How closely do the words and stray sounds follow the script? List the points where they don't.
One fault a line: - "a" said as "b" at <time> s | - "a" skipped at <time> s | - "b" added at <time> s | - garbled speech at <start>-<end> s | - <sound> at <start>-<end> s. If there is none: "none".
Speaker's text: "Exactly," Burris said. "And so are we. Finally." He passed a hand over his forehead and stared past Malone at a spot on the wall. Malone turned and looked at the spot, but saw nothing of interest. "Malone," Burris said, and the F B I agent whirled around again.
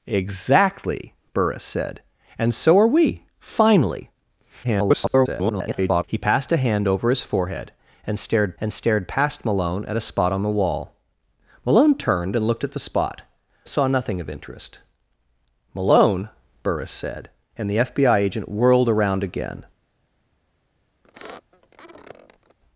- garbled speech at 4.6-6.0 s
- "and stared" added at 8.6 s
- "but" skipped at 13.2 s
- squeak at 21.0-22.6 s